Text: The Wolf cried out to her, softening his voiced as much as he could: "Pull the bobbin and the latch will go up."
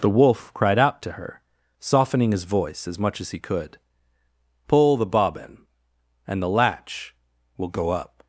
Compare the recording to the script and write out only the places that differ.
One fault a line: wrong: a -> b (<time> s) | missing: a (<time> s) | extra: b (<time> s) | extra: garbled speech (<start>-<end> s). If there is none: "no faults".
wrong: voiced -> voice (2.5 s)